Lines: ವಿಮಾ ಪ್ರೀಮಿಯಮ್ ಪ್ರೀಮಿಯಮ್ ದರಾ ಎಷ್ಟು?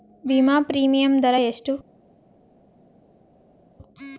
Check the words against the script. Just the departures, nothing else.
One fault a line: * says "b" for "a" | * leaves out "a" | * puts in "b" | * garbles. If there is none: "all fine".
* leaves out "ಪ್ರೀಮಿಯಮ್"